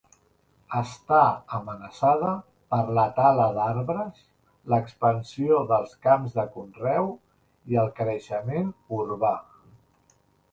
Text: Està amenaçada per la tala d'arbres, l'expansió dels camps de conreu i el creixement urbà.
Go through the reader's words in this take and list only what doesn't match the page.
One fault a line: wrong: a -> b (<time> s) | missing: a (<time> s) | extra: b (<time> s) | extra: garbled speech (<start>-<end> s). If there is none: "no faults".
no faults